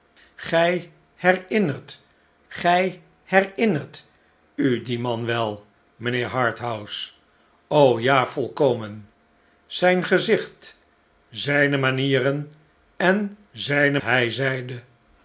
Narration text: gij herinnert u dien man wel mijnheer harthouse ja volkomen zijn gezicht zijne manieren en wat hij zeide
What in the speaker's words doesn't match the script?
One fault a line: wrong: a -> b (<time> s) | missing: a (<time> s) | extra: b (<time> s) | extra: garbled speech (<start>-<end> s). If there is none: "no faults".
extra: gij herinnert (2.5 s)
wrong: wat -> zijne (13.5 s)